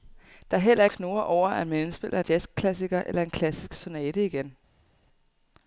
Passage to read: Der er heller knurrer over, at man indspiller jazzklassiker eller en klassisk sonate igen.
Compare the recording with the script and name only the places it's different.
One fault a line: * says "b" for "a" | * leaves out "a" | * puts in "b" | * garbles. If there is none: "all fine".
all fine